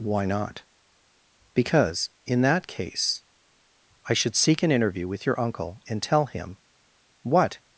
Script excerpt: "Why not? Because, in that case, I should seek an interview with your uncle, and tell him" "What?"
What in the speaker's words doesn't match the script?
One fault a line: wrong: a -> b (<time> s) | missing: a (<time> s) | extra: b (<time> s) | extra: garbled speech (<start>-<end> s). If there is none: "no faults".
no faults